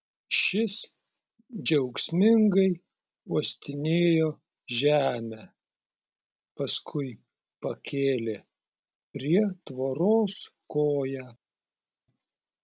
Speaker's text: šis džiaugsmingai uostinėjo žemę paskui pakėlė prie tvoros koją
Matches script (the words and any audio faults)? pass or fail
pass